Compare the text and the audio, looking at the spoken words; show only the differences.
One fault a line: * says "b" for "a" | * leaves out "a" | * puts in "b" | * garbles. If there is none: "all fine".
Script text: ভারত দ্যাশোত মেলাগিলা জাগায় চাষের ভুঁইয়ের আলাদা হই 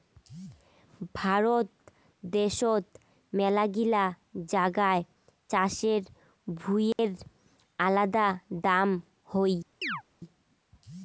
* puts in "দাম"